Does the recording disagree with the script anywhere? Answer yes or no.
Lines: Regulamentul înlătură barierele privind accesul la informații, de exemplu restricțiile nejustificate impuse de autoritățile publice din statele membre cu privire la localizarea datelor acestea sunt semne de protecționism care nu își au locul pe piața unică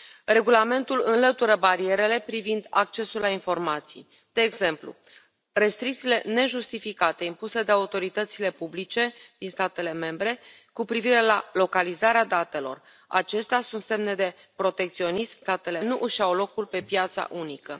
yes